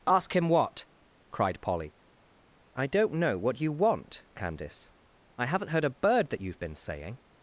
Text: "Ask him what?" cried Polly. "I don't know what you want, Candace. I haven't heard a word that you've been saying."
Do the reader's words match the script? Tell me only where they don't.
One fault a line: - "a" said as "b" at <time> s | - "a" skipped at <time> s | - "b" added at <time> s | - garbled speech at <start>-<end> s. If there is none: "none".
- "word" said as "bird" at 6.0 s